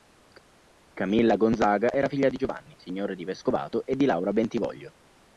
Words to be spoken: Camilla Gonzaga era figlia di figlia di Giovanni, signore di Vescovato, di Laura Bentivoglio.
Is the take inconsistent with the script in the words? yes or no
yes